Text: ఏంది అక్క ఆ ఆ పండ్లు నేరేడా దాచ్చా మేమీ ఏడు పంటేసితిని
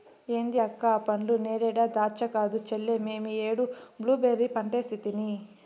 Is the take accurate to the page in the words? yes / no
no